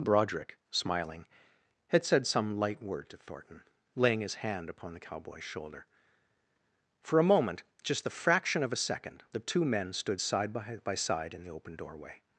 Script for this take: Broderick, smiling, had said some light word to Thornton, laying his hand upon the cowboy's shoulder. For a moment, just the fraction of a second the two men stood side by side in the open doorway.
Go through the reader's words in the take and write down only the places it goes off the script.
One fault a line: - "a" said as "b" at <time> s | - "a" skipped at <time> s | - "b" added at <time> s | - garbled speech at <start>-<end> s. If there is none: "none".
- "by" added at 10.8 s